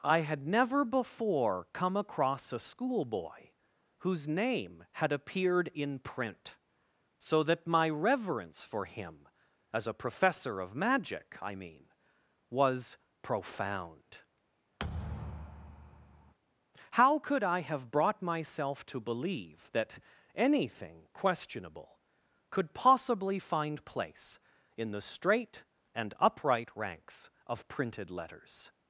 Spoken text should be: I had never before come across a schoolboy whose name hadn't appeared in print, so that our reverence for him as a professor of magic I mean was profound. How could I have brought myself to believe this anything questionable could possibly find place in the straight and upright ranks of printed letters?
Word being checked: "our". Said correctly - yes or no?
no